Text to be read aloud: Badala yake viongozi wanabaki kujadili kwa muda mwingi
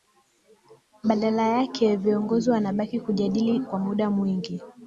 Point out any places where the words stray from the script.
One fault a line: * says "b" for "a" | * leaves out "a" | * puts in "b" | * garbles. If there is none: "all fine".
all fine